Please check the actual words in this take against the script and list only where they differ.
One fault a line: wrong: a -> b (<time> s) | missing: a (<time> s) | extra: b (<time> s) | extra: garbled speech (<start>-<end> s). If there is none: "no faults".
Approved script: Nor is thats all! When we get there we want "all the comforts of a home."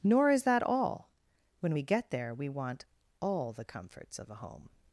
wrong: thats -> that (0.4 s)